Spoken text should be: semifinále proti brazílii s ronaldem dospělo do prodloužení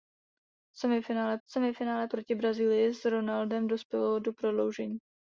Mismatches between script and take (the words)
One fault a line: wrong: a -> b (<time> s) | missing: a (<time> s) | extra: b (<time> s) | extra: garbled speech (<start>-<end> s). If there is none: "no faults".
extra: semifinále (1.5 s)